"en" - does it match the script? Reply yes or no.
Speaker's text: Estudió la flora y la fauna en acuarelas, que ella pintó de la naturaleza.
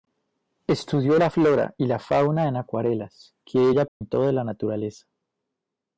yes